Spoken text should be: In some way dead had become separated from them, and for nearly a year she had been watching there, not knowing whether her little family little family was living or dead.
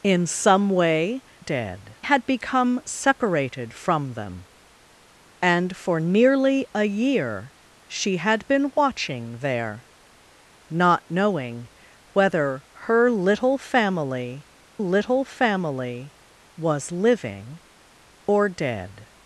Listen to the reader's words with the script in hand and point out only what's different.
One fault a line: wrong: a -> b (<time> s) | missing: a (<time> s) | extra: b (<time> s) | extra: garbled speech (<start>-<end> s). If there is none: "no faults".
no faults